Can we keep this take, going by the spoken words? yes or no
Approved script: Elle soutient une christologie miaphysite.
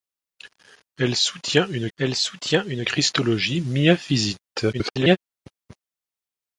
no